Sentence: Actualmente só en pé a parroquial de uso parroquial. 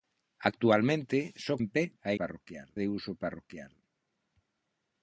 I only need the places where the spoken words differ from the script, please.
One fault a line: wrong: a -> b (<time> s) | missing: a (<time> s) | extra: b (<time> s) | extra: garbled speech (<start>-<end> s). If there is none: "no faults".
no faults